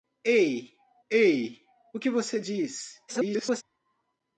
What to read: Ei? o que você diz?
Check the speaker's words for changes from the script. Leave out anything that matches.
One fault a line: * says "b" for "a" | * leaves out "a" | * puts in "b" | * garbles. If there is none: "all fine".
* puts in "ei"
* garbles